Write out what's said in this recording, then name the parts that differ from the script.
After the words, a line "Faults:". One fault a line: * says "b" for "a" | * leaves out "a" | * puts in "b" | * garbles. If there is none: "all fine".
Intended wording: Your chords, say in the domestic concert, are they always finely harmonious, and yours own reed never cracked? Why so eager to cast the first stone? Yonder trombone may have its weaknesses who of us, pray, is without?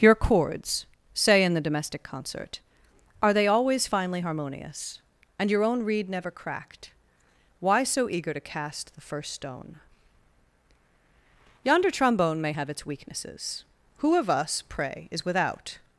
Your chords, say in the domestic concert, are they always finely harmonious, and your own reed never cracked? Why so eager to cast the first stone? Yonder trombone may have its weaknesses who of us, pray, is without?
Faults:
* says "your" for "yours"